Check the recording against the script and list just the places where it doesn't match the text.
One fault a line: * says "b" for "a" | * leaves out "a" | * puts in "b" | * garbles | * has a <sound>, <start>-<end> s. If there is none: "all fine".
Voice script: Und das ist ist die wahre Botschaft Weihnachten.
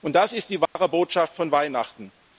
* leaves out "ist"
* has a dropout, 0.7-0.8 s
* puts in "von"